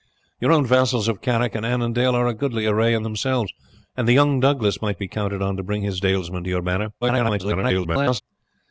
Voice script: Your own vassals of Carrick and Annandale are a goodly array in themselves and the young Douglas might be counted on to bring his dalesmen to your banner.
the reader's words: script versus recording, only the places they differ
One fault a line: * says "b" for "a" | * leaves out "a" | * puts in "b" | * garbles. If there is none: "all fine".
* garbles